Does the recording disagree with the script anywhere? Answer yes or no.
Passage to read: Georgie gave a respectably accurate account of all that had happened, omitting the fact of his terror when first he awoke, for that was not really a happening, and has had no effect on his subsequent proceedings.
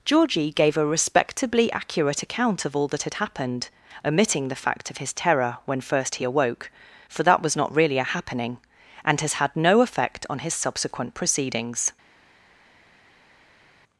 no